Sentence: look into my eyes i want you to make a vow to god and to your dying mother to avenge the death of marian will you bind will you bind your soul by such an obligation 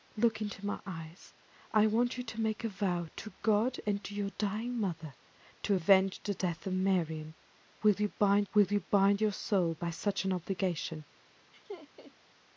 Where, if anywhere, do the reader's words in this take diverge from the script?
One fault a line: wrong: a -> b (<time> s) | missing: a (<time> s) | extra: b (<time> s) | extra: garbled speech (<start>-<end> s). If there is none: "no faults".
no faults